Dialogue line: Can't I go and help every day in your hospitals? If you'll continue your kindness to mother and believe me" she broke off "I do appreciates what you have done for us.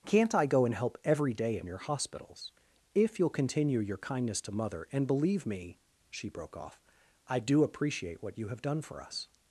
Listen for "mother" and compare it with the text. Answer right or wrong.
right